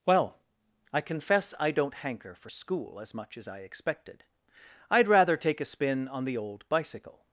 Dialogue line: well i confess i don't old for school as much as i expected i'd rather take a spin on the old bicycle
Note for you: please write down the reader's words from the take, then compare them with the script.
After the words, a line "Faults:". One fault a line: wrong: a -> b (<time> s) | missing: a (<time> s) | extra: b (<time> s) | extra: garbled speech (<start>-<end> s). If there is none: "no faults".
well i confess i don't hanker for school as much as i expected i'd rather take a spin on the old bicycle
Faults:
wrong: old -> hanker (1.9 s)